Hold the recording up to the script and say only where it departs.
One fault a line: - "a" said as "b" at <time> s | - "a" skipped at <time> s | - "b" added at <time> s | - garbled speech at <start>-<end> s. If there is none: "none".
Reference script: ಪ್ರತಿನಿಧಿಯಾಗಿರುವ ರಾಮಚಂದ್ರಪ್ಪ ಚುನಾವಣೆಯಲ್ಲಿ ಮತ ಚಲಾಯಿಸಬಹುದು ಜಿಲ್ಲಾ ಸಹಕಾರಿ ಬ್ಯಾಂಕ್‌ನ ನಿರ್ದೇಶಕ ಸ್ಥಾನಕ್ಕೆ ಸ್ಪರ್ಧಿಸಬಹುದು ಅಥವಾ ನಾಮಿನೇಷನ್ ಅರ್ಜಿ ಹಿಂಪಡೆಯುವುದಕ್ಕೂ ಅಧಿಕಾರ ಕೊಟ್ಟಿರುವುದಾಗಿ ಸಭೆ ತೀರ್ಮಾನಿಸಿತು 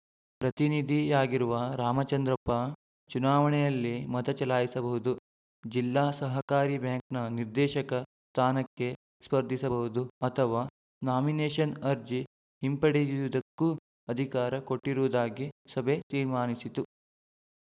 none